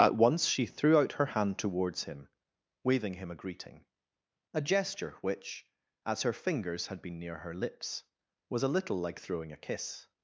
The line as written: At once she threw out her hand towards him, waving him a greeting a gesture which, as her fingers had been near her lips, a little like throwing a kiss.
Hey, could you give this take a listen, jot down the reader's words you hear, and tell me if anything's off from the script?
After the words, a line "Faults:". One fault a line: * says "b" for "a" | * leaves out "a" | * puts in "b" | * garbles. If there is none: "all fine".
At once she threw out her hand towards him, waving him a greeting a gesture which, as her fingers had been near her lips, was a little like throwing a kiss.
Faults:
* puts in "was"